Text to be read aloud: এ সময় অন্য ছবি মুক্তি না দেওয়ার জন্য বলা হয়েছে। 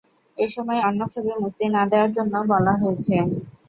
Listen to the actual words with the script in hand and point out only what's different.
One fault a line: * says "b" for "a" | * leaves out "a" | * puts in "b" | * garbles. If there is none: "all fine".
all fine